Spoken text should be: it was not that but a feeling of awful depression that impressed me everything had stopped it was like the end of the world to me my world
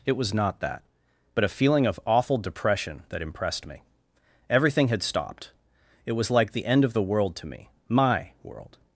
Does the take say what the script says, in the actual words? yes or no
yes